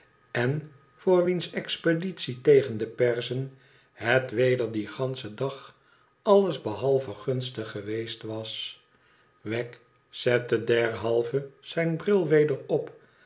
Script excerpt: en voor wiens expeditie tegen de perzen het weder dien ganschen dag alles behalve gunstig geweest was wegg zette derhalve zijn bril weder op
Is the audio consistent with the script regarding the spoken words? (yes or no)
yes